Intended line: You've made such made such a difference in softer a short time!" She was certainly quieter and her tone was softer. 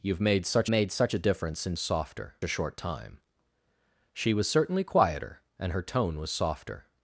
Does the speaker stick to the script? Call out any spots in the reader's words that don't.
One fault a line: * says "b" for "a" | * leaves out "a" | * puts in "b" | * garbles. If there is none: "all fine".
all fine